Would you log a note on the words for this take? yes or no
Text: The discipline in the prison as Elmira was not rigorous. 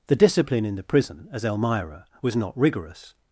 no